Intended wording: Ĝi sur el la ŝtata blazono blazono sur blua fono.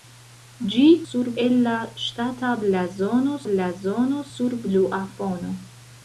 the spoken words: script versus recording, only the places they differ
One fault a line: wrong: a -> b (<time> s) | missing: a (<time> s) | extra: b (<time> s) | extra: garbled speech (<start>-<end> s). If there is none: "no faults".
no faults